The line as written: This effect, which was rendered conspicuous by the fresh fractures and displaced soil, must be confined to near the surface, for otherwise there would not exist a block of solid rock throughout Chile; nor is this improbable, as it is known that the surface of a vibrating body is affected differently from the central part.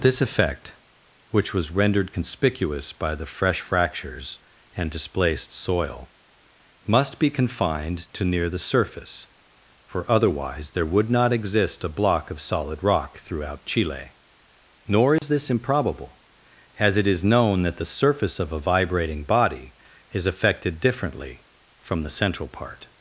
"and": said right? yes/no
yes